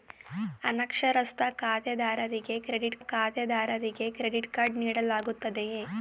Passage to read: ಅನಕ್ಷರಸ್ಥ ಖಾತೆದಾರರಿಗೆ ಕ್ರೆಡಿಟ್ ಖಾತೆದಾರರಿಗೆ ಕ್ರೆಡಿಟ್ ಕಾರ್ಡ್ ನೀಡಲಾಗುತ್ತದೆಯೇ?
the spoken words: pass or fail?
pass